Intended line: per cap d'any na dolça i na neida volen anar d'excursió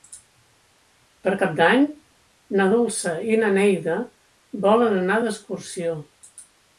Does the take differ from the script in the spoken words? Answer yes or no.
no